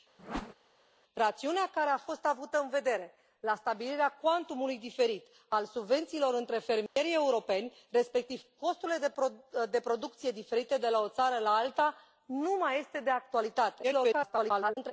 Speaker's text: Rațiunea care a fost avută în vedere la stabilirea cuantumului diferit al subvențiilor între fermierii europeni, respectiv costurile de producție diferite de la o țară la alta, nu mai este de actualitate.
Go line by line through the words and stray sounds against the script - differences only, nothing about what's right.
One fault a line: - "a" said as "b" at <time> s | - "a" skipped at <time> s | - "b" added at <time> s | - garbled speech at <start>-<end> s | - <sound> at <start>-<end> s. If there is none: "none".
- whoosh at 0.2-0.5 s
- dropout at 6.9-7.0 s
- garbled speech at 13.8-14.9 s